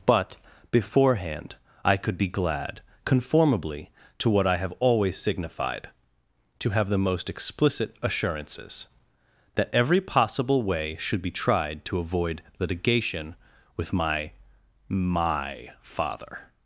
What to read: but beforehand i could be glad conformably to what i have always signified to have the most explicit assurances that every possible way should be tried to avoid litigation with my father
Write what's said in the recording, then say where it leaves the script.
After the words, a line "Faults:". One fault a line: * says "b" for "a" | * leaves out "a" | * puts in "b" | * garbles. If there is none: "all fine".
but beforehand i could be glad conformably to what i have always signified to have the most explicit assurances that every possible way should be tried to avoid litigation with my my father
Faults:
* puts in "my"